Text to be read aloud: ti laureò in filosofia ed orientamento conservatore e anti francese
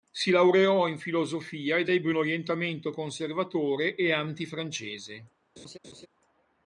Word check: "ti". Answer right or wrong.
wrong